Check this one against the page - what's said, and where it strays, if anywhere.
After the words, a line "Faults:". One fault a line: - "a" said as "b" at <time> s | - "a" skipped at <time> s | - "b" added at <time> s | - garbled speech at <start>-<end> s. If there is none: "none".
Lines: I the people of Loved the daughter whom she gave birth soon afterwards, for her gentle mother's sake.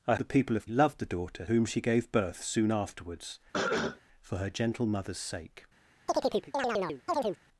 I the people of Loved the daughter whom she gave birth soon afterwards, for her gentle mother's sake.
Faults:
none